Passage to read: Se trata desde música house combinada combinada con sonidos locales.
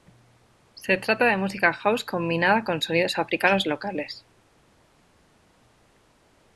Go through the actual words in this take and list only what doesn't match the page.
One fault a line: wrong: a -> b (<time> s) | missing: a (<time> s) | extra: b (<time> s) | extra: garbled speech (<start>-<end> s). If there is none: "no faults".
wrong: desde -> de (1.2 s)
missing: combinada (2.6 s)
extra: africanos (3.2 s)